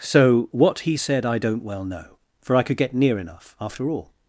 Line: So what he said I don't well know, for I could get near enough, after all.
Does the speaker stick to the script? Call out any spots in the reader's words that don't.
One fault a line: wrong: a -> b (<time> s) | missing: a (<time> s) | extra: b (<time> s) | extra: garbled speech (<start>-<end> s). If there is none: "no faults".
no faults